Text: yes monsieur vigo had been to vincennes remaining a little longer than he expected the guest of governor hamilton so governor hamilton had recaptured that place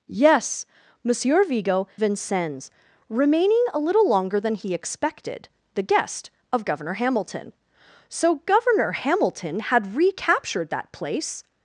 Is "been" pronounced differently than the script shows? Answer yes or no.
yes